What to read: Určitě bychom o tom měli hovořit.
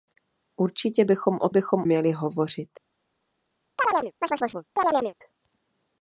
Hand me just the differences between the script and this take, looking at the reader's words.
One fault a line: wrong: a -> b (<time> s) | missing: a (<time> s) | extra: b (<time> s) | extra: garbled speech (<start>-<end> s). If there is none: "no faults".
wrong: tom -> bychom (1.5 s)